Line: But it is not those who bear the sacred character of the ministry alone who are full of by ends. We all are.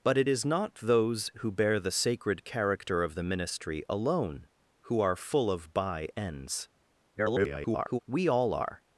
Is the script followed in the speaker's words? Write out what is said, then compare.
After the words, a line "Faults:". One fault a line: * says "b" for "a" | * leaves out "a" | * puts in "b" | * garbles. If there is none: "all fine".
But it is not those who bear the sacred character of the ministry alone who are full of by ends. [garbled] We all are.
Faults:
* garbles